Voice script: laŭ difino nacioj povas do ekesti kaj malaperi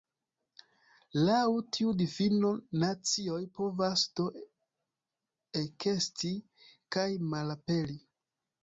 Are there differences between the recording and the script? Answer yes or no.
yes